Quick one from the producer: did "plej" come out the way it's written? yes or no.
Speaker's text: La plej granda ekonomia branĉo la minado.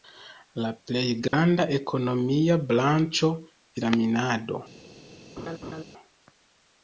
yes